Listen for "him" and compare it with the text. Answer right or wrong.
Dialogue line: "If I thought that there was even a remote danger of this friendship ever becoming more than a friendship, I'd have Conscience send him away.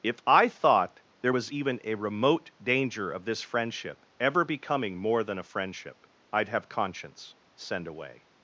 wrong